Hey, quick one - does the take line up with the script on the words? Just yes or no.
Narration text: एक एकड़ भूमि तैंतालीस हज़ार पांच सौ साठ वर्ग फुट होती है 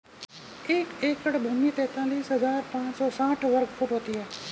yes